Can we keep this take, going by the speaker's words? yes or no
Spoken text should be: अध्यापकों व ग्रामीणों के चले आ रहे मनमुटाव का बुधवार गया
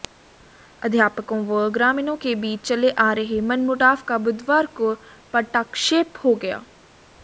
no